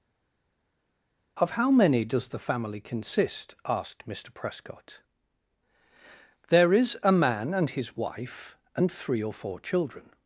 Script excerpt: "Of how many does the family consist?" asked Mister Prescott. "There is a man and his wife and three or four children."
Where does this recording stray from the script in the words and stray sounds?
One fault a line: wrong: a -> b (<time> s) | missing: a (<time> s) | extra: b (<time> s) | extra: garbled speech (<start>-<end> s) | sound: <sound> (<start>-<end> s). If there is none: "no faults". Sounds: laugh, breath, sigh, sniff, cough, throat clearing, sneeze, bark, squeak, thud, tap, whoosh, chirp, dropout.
no faults